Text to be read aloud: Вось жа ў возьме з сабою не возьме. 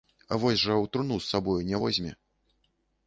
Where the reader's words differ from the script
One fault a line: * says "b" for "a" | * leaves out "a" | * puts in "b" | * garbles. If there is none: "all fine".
* says "труну" for "возьме"